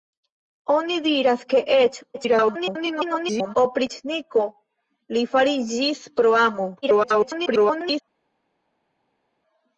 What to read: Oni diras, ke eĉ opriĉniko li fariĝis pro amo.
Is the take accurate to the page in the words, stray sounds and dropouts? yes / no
no